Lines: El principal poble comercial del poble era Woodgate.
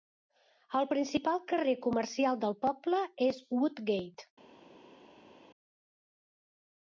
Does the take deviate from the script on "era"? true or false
true